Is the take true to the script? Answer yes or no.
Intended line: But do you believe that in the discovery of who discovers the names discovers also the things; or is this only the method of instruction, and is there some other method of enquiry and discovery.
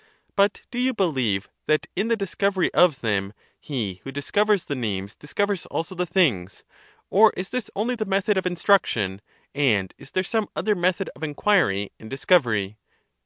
no